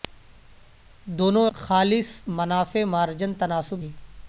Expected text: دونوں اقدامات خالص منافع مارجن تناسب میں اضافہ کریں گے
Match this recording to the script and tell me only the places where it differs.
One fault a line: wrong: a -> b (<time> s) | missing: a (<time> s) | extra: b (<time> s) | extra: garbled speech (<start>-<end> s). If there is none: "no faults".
missing: اقدامات (1.4 s)
missing: میں اضافہ کریں (3.8 s)